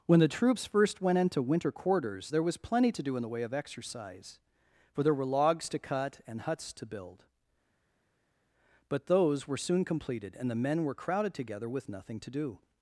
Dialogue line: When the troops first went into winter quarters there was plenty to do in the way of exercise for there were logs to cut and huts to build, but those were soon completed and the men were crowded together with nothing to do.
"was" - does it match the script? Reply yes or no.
yes